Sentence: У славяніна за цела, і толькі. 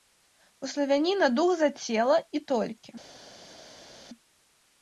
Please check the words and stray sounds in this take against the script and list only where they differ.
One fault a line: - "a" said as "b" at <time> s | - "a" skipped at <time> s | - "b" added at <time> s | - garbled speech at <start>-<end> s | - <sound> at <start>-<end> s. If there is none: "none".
- "дух" added at 1.4 s